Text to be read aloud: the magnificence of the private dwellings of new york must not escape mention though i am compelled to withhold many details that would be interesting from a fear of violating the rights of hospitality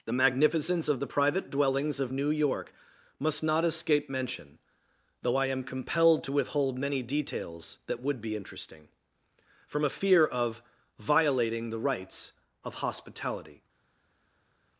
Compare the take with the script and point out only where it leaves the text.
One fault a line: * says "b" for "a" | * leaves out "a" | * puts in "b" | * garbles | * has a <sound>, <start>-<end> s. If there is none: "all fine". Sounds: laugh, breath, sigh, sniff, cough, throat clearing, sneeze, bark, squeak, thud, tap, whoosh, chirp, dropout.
all fine